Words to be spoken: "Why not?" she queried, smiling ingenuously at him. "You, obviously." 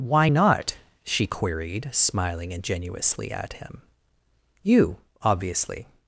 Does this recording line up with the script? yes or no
yes